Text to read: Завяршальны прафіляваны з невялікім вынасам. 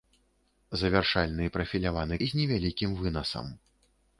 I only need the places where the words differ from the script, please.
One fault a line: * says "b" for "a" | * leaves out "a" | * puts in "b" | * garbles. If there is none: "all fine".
all fine